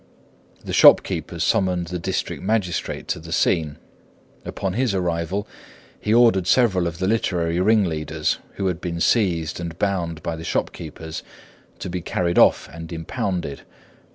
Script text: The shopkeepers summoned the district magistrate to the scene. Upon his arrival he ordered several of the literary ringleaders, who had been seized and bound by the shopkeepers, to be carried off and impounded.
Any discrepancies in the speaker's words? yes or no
no